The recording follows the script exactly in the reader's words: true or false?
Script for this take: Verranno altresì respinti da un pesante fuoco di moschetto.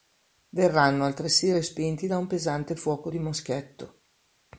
true